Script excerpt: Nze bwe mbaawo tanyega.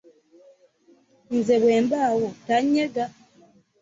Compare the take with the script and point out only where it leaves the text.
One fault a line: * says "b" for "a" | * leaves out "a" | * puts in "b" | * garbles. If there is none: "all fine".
all fine